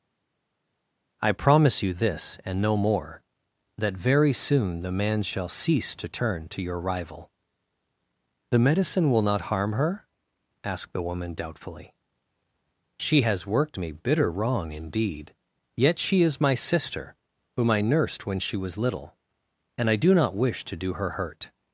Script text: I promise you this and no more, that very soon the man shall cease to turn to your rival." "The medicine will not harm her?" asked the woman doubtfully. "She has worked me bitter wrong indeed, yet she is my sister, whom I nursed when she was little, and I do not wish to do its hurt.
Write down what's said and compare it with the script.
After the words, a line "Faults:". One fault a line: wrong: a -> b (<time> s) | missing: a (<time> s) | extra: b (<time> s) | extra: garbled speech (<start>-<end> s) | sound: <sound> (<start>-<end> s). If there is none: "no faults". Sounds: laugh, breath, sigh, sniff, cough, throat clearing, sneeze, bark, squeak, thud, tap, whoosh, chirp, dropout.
I promise you this and no more, that very soon the man shall cease to turn to your rival." "The medicine will not harm her?" asked the woman doubtfully. "She has worked me bitter wrong indeed, yet she is my sister, whom I nursed when she was little, and I do not wish to do her hurt.
Faults:
wrong: its -> her (20.9 s)